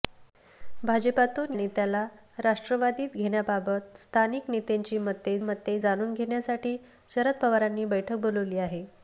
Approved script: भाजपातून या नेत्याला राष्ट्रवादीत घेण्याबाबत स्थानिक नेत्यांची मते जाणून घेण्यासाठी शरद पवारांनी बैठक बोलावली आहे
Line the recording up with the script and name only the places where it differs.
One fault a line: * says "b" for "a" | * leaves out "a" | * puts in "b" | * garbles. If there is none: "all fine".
* leaves out "या"
* puts in "मते"